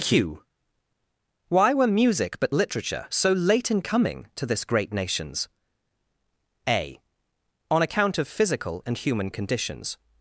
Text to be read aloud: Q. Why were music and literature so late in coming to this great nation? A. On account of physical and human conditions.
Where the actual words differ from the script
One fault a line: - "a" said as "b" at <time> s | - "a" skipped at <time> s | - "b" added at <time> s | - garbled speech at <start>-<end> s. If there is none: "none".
- "and" said as "but" at 2.4 s
- "nation" said as "nations" at 4.9 s